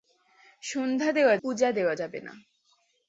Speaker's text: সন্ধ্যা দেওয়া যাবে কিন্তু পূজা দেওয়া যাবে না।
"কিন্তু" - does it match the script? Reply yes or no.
no